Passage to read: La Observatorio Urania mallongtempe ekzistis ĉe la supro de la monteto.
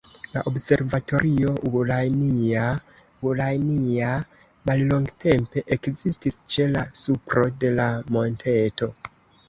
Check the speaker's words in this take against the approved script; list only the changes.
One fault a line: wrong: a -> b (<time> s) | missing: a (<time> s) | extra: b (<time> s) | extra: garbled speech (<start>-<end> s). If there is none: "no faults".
extra: Urania (3.3 s)